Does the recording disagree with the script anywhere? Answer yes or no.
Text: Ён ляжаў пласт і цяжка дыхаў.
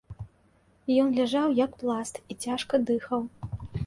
yes